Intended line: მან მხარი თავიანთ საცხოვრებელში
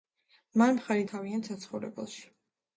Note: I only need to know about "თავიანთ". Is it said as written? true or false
true